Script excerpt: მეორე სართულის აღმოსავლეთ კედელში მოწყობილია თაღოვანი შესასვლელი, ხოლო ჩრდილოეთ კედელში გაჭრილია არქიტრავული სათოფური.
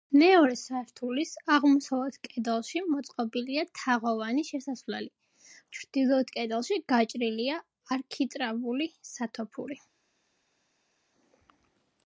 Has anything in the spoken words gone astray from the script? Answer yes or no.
yes